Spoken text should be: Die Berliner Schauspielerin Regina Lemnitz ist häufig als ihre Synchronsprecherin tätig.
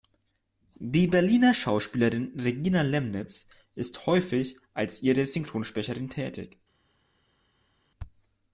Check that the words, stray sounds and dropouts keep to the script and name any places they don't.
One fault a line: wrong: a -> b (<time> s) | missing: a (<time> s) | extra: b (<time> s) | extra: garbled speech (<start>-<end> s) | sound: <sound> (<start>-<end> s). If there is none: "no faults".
no faults